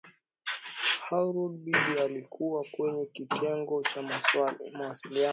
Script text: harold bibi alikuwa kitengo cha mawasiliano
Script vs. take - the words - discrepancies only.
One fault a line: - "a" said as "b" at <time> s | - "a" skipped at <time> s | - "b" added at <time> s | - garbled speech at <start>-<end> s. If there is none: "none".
- "kwenye" added at 2.7 s